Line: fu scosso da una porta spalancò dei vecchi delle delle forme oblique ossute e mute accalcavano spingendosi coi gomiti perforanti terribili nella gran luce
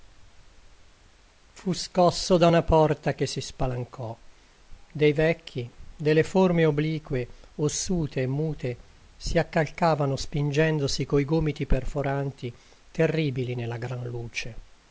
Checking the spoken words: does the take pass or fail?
fail